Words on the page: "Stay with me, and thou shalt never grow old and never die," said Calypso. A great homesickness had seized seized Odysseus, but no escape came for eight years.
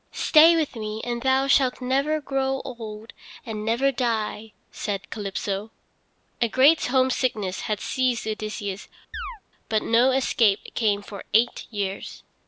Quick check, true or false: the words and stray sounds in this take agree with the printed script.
false